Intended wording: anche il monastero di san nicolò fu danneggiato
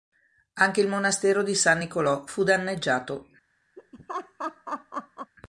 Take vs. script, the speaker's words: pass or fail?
pass